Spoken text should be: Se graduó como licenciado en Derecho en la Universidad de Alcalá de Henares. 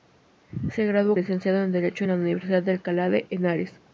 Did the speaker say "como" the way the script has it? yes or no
no